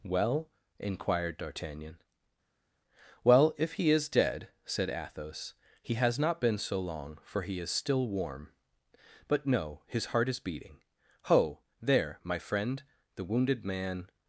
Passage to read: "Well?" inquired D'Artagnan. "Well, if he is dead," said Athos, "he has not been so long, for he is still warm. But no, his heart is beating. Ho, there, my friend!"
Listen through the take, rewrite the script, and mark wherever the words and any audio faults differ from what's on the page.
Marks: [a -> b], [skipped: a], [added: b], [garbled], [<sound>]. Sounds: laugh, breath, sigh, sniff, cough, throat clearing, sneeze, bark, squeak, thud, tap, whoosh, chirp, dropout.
"Well?" inquired D'Artagnan. "Well, if he is dead," said Athos, "he has not been so long, for he is still warm. But no, his heart is beating. Ho, there, my friend!" [added: The wounded man]